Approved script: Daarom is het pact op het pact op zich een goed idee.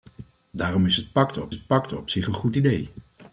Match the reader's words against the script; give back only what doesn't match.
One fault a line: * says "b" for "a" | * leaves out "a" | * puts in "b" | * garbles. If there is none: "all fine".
all fine